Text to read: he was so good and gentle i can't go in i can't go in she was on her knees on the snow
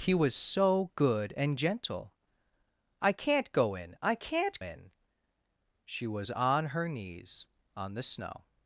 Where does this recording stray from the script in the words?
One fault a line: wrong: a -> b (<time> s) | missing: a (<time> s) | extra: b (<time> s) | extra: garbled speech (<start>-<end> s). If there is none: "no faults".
missing: go (4.6 s)